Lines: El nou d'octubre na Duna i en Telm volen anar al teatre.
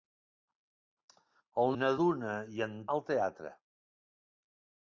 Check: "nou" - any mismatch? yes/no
yes